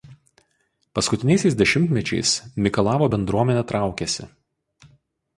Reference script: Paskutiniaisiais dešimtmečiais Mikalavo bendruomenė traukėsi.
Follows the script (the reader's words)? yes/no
yes